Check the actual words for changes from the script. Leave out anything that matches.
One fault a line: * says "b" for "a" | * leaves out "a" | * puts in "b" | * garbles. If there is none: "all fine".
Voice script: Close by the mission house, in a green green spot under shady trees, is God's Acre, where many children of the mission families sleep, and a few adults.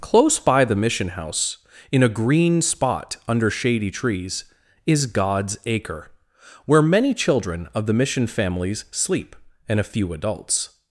* leaves out "green"